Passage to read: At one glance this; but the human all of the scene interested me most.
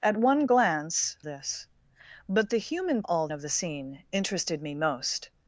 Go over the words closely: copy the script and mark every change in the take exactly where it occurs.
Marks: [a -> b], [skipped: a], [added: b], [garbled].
At one glance this; but the human all of the scene interested me most.